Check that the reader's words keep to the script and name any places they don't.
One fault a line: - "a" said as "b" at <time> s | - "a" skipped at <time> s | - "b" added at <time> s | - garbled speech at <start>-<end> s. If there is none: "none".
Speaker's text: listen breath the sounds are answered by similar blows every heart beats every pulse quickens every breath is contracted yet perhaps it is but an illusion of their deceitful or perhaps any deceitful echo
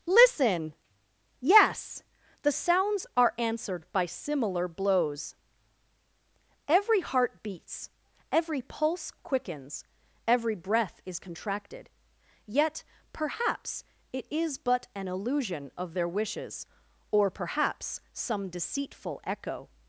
- "breath" said as "yes" at 1.4 s
- "deceitful" said as "wishes" at 16.1 s
- "any" said as "some" at 18.1 s